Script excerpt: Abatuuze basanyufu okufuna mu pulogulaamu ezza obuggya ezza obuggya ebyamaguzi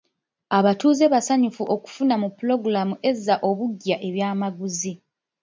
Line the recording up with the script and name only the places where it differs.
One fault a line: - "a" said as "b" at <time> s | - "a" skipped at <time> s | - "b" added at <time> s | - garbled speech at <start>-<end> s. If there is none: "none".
- "ezza obuggya" skipped at 4.0 s